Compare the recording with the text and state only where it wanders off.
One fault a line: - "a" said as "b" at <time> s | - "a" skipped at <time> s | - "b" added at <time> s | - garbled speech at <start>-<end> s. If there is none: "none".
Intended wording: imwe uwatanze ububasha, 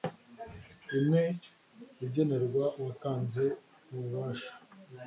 - "igenerwa" added at 2.0 s